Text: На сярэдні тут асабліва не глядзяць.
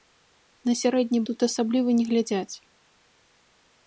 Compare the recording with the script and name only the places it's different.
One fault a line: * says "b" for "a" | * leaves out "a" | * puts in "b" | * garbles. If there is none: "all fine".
all fine